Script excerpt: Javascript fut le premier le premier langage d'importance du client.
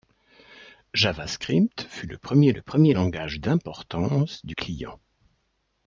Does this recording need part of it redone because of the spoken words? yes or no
no